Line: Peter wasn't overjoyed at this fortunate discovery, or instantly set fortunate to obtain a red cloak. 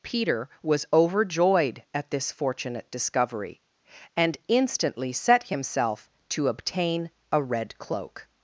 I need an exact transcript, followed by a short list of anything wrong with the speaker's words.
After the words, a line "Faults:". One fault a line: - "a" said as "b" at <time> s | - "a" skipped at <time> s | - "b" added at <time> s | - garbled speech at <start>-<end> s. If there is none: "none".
Peter was overjoyed at this fortunate discovery, and instantly set himself to obtain a red cloak.
Faults:
- "wasn't" said as "was" at 0.6 s
- "or" said as "and" at 4.2 s
- "fortunate" said as "himself" at 5.4 s